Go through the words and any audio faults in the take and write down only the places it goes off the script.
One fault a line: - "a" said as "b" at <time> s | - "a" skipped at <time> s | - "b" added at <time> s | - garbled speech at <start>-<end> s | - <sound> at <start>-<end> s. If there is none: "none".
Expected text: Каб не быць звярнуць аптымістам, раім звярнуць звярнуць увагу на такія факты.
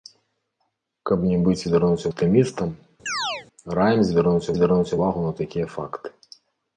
- chirp at 3.1-3.5 s